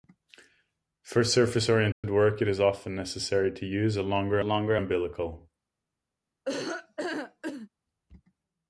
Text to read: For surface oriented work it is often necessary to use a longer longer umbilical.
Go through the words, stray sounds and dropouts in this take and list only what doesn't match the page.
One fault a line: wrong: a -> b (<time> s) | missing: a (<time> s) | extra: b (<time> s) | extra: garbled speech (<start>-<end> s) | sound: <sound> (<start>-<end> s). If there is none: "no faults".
sound: dropout (1.9-2.0 s)
sound: laugh (6.4-7.7 s)